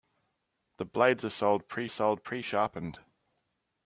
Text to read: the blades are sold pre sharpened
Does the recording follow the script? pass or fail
fail